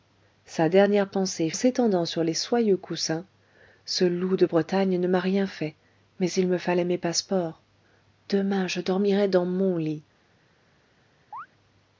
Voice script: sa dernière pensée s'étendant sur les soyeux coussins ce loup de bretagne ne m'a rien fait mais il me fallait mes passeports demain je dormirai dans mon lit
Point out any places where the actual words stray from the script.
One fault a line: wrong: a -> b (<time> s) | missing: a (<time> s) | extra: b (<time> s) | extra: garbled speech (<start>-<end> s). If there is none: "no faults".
no faults